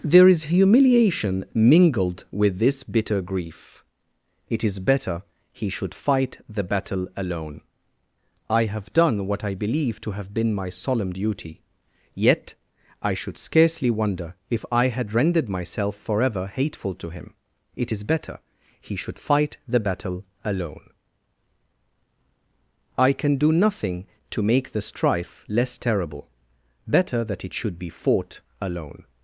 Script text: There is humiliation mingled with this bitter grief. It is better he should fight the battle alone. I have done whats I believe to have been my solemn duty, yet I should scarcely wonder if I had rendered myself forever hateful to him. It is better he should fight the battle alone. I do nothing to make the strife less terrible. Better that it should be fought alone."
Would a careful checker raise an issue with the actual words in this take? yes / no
yes